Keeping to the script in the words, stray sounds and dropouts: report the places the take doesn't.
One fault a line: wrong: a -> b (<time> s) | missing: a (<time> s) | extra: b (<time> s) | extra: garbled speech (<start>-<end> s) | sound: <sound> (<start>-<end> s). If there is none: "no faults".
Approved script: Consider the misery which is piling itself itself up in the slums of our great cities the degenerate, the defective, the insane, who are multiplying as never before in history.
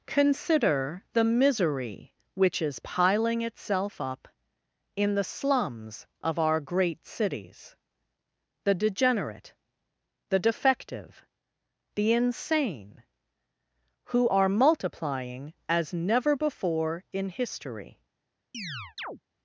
missing: itself (4.0 s)
sound: chirp (18.5-19.2 s)